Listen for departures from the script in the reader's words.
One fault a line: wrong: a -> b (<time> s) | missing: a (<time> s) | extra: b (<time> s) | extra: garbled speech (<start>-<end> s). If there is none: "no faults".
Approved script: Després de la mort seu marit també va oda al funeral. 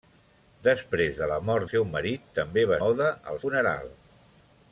no faults